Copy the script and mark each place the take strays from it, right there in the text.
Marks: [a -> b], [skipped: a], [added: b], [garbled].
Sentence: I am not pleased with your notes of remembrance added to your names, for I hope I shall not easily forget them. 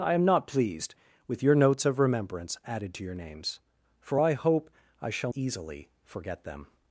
I am not pleased with your notes of remembrance added to your names, for I hope I shall [skipped: not] easily forget them.